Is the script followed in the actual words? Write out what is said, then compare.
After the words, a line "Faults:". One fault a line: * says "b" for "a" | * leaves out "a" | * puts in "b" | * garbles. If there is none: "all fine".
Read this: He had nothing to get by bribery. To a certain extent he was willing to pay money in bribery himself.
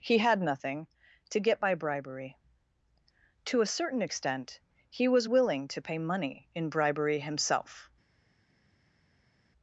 He had nothing to get by bribery. To a certain extent he was willing to pay money in bribery himself.
Faults:
all fine